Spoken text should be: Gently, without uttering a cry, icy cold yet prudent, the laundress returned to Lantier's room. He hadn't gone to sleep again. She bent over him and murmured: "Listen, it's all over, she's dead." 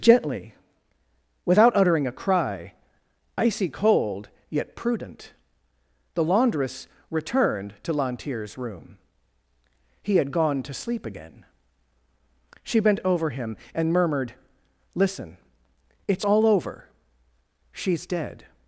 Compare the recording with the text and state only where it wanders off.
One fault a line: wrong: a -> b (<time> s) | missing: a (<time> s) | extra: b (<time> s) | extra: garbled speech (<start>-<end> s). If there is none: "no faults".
wrong: hadn't -> had (10.2 s)